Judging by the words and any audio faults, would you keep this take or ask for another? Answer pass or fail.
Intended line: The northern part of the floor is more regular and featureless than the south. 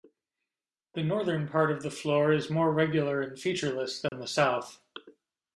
fail